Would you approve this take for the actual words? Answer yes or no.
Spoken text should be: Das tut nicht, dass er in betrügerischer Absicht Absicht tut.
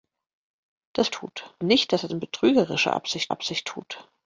yes